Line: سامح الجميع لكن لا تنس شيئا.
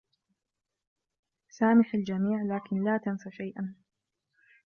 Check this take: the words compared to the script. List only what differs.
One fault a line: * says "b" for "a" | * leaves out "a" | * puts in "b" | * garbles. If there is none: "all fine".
all fine